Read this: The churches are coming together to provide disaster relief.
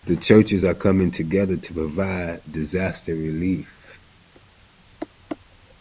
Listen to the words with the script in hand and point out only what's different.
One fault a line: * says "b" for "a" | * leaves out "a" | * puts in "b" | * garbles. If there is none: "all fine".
all fine